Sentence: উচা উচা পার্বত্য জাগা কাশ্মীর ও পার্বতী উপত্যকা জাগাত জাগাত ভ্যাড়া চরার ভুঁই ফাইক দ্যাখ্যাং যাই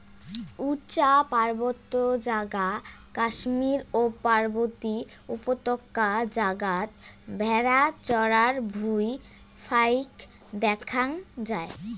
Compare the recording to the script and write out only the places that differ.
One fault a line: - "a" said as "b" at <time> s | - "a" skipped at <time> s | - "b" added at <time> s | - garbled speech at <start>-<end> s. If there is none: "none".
- "উচা" skipped at 1.1 s
- "জাগাত" skipped at 6.9 s